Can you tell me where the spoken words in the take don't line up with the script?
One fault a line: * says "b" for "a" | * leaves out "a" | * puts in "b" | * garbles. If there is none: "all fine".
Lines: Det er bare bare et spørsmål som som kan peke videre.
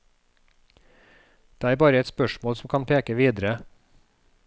* leaves out "bare"
* leaves out "som"